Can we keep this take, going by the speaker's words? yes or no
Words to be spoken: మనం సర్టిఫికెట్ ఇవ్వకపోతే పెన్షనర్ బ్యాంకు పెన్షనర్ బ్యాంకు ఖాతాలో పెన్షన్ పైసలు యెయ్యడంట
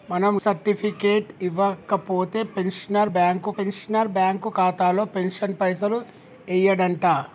yes